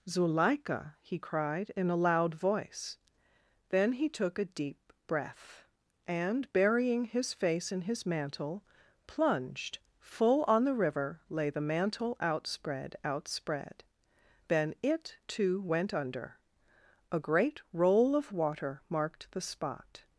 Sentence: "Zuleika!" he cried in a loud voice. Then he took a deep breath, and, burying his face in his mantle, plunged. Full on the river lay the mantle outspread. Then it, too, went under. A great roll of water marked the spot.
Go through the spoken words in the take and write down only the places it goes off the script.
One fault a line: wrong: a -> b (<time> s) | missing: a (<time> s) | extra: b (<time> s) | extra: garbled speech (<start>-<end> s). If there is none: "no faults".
extra: outspread (13.0 s)